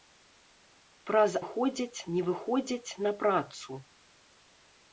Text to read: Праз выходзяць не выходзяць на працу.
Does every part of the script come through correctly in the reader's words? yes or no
yes